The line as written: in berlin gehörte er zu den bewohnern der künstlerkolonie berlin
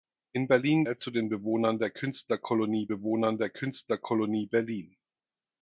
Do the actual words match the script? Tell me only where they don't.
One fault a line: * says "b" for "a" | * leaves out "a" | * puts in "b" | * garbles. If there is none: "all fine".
* leaves out "gehörte"
* puts in "bewohnern der künstlerkolonie"